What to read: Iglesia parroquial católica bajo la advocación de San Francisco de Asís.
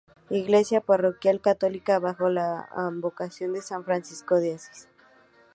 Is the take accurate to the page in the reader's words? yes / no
yes